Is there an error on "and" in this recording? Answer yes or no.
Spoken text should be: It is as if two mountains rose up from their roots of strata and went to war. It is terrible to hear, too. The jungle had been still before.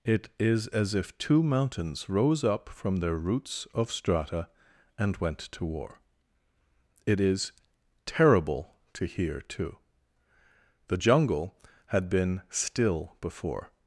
no